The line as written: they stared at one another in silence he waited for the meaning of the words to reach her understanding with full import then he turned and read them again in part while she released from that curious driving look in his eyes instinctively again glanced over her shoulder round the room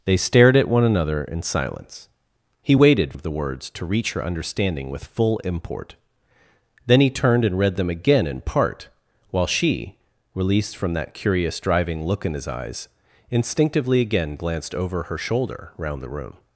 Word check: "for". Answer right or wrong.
wrong